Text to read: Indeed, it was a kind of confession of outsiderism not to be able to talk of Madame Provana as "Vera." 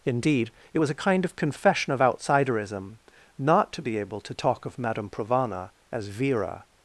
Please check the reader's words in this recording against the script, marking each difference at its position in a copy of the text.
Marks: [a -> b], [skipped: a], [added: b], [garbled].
Indeed, it was a kind of confession of outsiderism not to be able to talk of Madame Provana as "Vera."